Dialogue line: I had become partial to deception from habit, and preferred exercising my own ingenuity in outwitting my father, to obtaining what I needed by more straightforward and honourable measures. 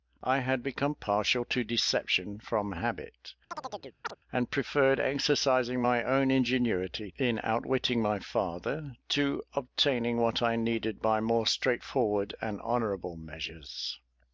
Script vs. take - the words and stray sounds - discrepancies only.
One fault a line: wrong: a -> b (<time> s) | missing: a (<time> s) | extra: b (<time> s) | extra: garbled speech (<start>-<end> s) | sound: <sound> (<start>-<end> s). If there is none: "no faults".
sound: chirp (3.5-4.2 s)